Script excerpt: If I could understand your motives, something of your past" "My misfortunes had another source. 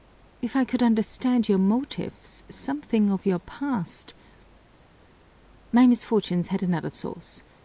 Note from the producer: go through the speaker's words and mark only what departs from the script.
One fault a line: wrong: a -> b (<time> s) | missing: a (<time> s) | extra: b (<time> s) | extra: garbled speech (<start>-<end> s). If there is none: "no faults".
no faults